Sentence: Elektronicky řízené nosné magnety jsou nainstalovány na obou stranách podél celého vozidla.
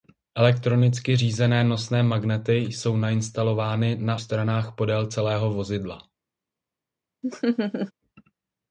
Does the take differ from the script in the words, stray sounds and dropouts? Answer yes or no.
yes